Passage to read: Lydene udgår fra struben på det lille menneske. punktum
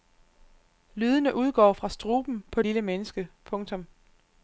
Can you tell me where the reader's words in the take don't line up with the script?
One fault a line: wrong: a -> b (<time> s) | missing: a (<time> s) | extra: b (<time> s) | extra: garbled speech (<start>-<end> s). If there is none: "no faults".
missing: det (2.6 s)